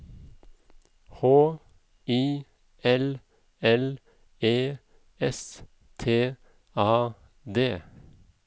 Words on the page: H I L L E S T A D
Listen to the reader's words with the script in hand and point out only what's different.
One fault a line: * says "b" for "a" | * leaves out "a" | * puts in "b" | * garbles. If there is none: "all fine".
all fine